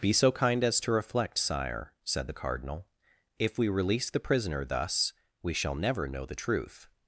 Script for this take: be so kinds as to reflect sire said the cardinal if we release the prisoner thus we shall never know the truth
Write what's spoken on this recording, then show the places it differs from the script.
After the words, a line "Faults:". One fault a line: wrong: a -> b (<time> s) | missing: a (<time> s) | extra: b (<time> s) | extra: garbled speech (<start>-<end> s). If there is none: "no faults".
be so kind as to reflect sire said the cardinal if we release the prisoner thus we shall never know the truth
Faults:
wrong: kinds -> kind (0.3 s)